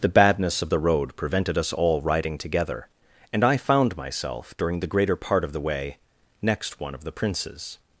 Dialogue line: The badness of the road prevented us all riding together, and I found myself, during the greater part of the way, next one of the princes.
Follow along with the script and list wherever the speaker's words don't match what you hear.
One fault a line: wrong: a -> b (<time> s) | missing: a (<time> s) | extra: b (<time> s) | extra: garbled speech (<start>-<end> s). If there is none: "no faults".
no faults